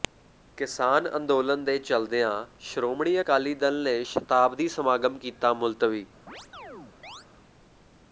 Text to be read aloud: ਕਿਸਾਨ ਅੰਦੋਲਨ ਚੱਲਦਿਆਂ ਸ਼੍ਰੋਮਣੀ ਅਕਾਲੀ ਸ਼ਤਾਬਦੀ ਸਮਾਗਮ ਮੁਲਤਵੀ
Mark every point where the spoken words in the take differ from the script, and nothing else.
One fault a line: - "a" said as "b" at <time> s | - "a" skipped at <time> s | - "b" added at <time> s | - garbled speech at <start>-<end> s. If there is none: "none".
- "ਦੇ" added at 1.6 s
- "ਦਲ ਨੇ" added at 3.6 s
- "ਕੀਤਾ" added at 5.2 s